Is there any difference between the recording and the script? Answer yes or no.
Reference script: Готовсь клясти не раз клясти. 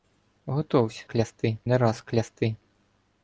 no